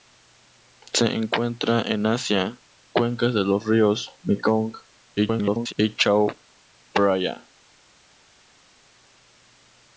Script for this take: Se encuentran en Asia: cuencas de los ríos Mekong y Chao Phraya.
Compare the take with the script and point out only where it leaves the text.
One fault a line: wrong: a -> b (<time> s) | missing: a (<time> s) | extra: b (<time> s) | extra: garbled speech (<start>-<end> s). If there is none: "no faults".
extra: garbled speech (5.2-5.7 s)